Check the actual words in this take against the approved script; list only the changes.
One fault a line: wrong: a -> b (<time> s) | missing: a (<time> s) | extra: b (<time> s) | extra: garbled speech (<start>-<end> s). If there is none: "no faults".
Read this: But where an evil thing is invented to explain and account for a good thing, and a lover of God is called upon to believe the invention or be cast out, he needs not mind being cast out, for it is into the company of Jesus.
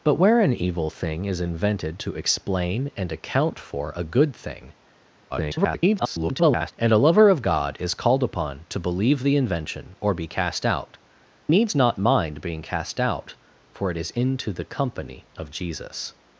extra: garbled speech (5.3-6.7 s)
missing: he (11.0 s)